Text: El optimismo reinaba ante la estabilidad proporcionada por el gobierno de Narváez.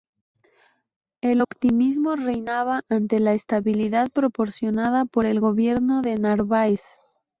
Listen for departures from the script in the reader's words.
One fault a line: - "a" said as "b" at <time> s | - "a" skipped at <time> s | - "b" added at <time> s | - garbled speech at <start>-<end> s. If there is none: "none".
none